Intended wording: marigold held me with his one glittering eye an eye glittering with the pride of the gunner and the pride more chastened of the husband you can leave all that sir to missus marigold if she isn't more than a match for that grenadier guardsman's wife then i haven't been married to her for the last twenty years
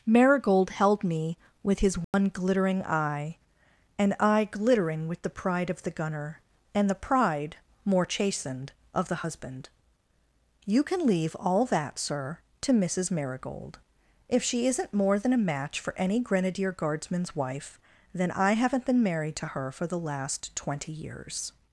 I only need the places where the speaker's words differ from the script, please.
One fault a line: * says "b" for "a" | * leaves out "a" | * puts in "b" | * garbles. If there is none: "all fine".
* says "any" for "that"